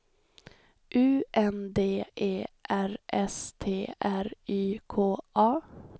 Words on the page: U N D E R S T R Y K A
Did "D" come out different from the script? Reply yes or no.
no